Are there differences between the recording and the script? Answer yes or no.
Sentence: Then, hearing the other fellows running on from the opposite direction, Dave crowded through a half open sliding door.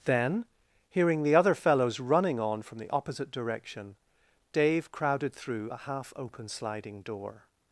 no